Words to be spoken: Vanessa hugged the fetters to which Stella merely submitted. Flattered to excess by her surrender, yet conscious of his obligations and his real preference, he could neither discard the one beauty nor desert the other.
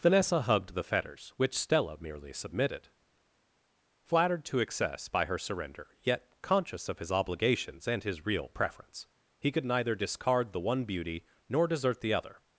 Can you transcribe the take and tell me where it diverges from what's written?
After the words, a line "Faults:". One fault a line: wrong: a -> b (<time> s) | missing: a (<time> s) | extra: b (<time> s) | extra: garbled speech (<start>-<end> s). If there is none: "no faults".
Vanessa hugged the fetters which Stella merely submitted. Flattered to excess by her surrender, yet conscious of his obligations and his real preference, he could neither discard the one beauty nor desert the other.
Faults:
missing: to (1.3 s)